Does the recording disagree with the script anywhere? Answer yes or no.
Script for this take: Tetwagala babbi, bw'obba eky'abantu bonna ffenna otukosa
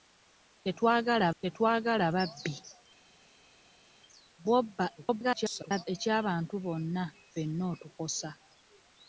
yes